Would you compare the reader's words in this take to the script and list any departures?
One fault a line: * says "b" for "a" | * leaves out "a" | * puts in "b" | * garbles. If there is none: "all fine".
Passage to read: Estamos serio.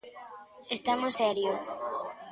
all fine